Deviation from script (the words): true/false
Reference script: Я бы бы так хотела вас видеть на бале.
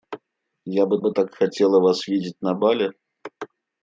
false